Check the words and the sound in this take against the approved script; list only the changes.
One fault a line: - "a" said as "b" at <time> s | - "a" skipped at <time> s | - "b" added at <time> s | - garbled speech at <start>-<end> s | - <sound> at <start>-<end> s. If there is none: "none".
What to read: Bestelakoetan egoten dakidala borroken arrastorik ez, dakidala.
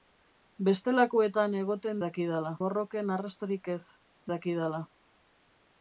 none